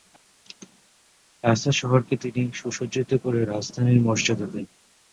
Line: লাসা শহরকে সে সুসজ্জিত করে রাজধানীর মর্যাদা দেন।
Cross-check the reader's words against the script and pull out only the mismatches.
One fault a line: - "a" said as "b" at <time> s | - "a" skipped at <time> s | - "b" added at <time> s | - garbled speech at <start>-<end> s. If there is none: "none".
- "সে" said as "তিনি" at 2.2 s